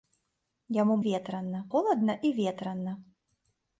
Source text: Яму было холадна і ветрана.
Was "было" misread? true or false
true